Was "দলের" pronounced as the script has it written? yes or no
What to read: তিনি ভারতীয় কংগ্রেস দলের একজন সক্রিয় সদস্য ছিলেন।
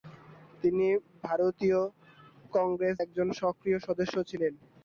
no